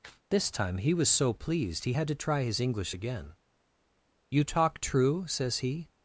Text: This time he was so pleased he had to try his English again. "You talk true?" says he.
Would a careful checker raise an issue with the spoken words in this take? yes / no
no